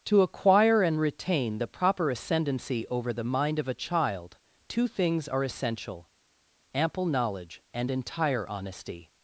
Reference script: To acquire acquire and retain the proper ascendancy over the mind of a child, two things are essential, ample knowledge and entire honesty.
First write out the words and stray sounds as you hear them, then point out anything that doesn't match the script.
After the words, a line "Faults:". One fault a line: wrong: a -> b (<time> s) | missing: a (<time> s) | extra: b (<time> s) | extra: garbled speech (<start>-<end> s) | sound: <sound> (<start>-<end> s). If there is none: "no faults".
To acquire and retain the proper ascendancy over the mind of a child, two things are essential, ample knowledge and entire honesty.
Faults:
missing: acquire (0.8 s)